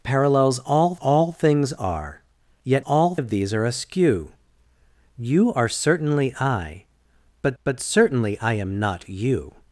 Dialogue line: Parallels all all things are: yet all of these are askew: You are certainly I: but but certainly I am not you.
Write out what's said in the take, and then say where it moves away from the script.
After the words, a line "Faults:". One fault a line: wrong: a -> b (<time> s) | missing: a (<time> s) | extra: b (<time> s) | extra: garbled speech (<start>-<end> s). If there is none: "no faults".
Parallels all all things are: yet all of these are askew: You are certainly I: but but certainly I am not you.
Faults:
no faults